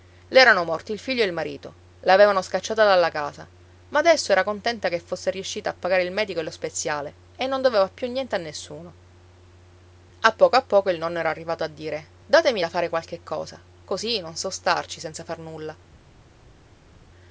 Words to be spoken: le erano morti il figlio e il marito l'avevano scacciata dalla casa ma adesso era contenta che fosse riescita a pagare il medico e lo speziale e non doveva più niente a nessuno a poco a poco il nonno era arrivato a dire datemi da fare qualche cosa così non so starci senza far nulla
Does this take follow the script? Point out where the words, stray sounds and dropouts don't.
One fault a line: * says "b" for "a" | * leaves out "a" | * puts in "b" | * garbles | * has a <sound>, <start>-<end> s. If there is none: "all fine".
all fine